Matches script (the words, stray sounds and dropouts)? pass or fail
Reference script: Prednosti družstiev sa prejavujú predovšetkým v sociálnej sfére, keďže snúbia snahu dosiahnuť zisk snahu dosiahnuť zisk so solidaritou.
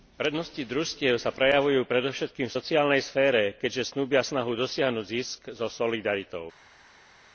fail